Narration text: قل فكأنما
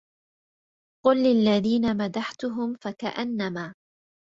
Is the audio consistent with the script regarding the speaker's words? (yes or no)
no